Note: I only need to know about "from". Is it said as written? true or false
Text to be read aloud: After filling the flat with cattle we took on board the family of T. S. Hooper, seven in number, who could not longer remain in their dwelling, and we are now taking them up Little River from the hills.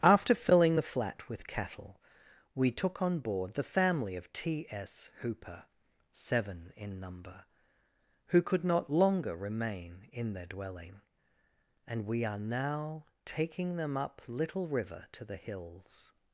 false